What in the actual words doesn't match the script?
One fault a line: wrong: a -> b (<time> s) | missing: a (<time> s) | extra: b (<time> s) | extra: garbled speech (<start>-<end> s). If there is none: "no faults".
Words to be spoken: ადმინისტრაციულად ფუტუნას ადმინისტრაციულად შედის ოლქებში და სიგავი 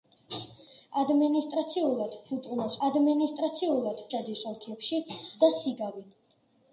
no faults